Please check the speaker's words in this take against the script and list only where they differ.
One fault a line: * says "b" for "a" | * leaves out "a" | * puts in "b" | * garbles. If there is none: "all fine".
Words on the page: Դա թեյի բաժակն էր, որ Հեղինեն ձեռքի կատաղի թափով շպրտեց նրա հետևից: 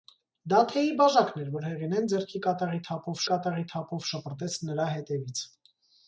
* puts in "կատաղի թափով"